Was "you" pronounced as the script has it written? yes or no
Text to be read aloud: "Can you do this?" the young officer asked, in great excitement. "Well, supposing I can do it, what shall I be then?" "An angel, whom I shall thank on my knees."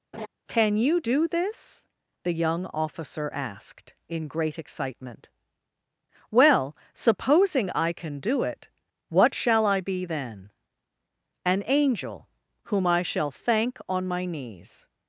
yes